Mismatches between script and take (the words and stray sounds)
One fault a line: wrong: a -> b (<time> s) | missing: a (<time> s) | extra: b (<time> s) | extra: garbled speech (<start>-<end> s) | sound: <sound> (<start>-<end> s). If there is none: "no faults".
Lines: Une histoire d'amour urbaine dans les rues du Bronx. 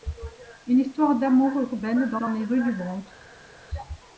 extra: dans (2.2 s)